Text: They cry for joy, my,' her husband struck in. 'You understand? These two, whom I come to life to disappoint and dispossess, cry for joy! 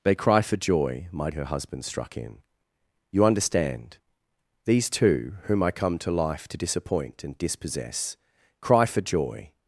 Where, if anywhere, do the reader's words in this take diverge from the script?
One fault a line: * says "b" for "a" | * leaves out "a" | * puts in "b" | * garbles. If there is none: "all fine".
all fine